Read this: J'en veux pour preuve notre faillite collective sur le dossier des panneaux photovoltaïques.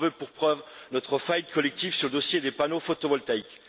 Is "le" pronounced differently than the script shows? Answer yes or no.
no